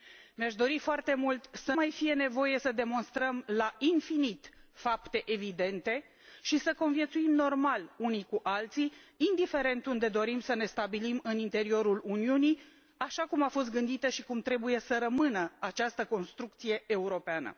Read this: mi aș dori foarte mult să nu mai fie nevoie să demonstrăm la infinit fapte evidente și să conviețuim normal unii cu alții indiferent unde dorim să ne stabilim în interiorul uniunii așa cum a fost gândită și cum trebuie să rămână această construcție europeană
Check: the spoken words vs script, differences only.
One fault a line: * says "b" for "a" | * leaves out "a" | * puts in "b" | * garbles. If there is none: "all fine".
* leaves out "nu"